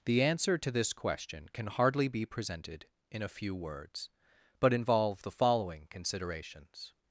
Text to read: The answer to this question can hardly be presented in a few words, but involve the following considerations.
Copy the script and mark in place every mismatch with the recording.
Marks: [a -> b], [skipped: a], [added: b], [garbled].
The answer to this question can hardly be presented in a few words, but involve the following considerations.